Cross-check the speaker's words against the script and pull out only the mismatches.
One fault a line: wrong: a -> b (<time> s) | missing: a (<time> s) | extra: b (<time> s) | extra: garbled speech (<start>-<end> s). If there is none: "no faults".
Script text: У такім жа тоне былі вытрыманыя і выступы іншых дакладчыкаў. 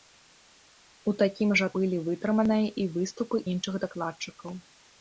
missing: тоне (1.7 s)